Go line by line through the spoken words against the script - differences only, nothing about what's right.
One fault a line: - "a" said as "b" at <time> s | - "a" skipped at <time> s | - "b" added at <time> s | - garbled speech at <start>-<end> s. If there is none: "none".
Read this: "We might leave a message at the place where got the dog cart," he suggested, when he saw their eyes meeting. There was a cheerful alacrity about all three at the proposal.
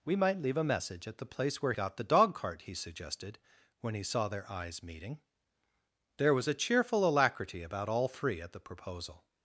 none